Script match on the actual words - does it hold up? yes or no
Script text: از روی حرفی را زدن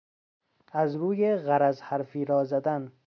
no